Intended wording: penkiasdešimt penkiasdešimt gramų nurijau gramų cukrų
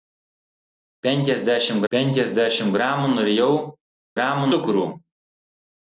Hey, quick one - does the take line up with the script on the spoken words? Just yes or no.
yes